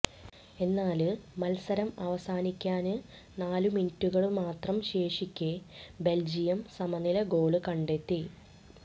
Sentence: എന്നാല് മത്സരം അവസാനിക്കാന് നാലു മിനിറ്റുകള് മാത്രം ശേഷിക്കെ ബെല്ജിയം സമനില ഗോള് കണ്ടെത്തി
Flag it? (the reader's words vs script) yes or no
no